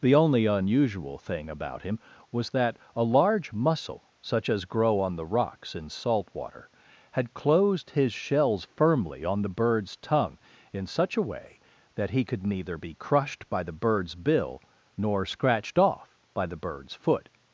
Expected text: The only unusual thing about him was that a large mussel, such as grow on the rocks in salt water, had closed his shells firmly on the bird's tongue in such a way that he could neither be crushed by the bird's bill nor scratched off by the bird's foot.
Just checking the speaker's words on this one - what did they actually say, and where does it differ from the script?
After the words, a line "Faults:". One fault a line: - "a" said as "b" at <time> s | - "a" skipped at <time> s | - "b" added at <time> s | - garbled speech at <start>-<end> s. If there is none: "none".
The only unusual thing about him was that a large mussel, such as grow on the rocks in salt water, had closed his shells firmly on the bird's tongue in such a way that he could neither be crushed by the bird's bill nor scratched off by the bird's foot.
Faults:
none